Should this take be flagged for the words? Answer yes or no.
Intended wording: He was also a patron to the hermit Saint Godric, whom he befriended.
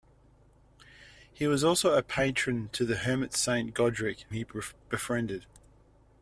yes